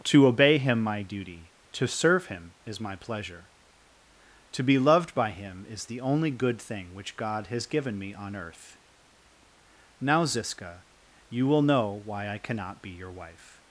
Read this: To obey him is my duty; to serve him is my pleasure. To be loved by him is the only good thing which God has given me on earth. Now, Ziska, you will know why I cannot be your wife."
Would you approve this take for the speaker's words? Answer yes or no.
no